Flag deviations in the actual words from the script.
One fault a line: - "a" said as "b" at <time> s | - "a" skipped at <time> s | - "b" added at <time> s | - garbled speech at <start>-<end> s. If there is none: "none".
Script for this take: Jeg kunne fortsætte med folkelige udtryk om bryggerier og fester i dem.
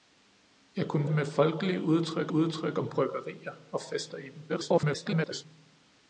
- "fortsætte" skipped at 1.1 s
- "udtryk" added at 2.3 s
- garbled speech at 4.5-5.5 s